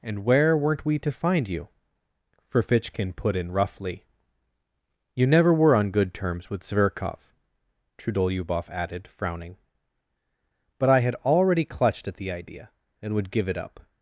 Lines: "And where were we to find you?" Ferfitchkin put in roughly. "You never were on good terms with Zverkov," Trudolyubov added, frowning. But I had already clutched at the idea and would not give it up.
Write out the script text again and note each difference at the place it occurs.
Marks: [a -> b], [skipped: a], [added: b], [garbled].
"And where [were -> weren't] we to find you?" Ferfitchkin put in roughly. "You never were on good terms with Zverkov," Trudolyubov added, frowning. But I had already clutched at the idea and would [skipped: not] give it up.